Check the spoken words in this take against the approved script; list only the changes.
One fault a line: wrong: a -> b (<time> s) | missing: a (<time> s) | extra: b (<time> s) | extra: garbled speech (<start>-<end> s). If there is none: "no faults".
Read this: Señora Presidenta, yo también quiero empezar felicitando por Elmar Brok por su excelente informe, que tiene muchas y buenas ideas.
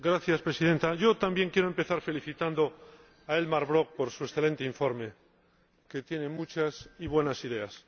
wrong: por -> a (3.3 s)